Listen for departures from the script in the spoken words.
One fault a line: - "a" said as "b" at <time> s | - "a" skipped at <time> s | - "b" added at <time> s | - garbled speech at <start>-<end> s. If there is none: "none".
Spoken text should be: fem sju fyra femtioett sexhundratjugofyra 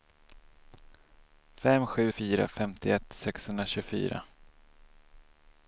none